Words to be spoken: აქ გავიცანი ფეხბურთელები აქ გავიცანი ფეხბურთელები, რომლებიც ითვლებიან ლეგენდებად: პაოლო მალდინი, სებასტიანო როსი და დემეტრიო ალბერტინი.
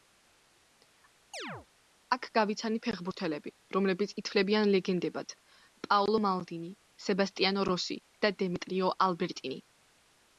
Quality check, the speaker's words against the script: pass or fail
fail